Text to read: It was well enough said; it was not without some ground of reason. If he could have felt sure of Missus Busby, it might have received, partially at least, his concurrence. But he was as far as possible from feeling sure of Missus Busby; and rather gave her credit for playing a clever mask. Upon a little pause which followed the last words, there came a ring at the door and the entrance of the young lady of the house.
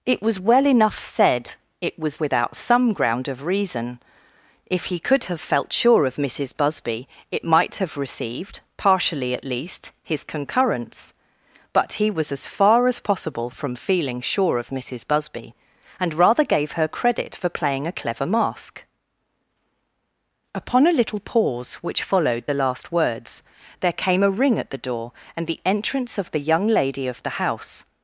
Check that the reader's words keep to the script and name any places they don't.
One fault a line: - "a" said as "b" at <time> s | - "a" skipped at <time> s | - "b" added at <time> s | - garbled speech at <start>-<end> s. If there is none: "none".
- "not" skipped at 2.2 s